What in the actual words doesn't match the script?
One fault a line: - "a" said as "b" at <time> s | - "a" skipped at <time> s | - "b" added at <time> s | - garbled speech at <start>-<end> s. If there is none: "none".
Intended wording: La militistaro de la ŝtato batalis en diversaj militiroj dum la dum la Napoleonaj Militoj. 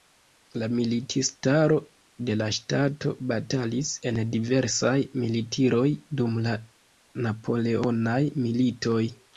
- "dum la" skipped at 6.6 s